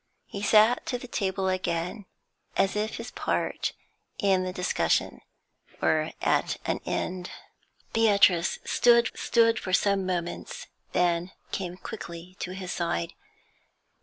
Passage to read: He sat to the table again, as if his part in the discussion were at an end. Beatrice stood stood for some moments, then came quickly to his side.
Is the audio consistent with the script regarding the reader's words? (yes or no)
yes